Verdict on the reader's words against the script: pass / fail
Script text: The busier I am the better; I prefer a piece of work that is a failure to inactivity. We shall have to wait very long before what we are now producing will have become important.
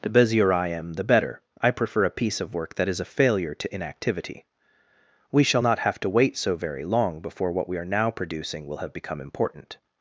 fail